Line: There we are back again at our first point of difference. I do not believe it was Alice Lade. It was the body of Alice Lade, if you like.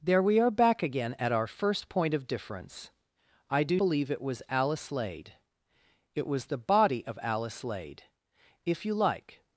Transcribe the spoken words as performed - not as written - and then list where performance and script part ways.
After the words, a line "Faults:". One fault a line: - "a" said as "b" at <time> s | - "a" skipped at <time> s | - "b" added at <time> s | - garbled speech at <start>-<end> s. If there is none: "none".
There we are back again at our first point of difference. I do believe it was Alice Lade. It was the body of Alice Lade, if you like.
Faults:
- "not" skipped at 3.8 s